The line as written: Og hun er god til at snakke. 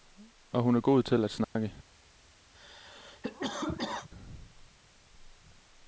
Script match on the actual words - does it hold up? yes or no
yes